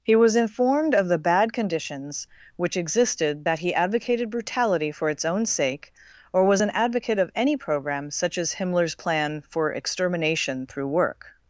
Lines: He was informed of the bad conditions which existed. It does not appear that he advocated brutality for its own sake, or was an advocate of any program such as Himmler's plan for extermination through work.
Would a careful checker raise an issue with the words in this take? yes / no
yes